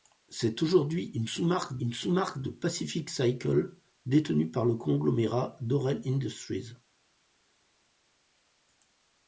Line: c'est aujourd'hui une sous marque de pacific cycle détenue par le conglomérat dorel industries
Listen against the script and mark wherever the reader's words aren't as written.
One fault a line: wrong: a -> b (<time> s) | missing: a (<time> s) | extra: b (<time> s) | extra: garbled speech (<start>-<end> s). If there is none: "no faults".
extra: une sous marque (1.8 s)